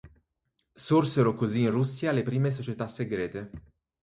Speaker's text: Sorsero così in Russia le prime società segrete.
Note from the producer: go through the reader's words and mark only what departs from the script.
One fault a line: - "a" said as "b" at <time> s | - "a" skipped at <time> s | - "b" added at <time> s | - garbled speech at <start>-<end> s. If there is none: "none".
none